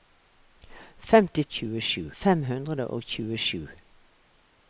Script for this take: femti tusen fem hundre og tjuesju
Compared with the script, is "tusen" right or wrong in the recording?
wrong